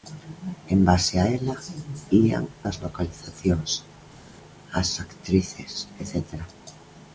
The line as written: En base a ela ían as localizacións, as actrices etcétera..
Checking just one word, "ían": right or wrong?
right